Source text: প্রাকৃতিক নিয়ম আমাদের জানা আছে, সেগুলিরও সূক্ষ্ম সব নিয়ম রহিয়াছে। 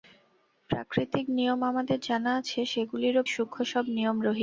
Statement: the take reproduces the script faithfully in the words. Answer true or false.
true